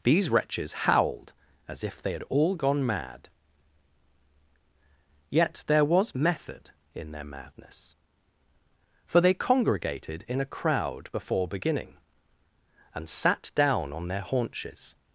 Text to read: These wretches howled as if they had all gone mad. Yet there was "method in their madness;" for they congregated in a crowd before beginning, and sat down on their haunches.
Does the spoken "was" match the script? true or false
true